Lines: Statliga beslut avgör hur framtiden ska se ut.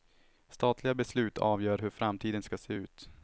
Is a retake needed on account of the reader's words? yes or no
no